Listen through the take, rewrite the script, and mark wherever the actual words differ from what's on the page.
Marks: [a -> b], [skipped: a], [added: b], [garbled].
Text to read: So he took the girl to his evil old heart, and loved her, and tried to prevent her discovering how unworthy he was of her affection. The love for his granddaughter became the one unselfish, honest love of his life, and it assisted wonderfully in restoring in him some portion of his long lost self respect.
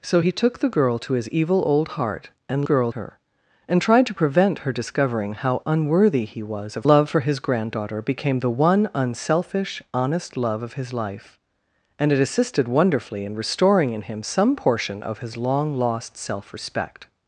So he took the girl to his evil old heart, and [loved -> girl] her, and tried to prevent her discovering how unworthy he was of [skipped: her affection. The] love for his granddaughter became the one unselfish, honest love of his life, and it assisted wonderfully in restoring in him some portion of his long lost self respect.